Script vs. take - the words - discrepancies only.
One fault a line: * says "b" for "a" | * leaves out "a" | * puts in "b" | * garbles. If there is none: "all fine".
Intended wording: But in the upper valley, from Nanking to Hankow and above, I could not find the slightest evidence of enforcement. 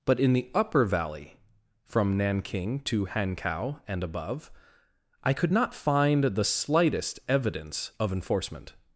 all fine